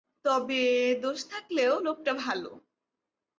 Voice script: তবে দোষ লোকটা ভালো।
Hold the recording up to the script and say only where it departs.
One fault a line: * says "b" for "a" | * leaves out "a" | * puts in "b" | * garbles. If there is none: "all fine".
* puts in "থাকলেও"